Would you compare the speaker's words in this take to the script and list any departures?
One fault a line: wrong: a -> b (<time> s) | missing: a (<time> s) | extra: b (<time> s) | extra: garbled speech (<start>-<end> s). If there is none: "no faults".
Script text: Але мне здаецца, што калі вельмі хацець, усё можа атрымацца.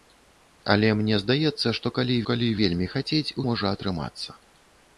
extra: калі (2.3 s)
missing: усё (3.4 s)